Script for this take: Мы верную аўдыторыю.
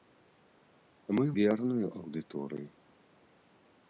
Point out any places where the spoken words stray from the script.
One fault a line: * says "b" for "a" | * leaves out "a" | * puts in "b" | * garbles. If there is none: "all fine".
all fine